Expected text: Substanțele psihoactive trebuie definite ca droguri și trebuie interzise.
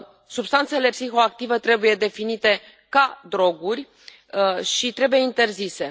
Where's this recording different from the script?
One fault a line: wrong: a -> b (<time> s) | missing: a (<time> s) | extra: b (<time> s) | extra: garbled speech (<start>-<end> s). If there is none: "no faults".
no faults